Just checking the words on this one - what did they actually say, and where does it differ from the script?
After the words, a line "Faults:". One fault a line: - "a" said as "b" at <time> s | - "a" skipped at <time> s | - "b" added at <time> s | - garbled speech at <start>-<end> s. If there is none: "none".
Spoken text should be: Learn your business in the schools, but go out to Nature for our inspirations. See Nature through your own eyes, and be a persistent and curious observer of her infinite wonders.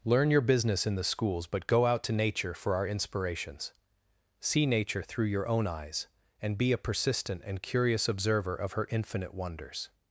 Learn your business in the schools, but go out to Nature for our inspirations. See Nature through your own eyes, and be a persistent and curious observer of her infinite wonders.
Faults:
none